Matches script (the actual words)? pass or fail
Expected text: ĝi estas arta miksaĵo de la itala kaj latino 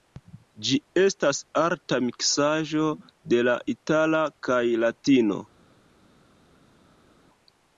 pass